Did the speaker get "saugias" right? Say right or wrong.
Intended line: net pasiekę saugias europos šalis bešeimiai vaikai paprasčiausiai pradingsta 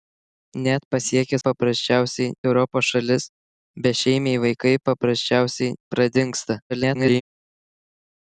wrong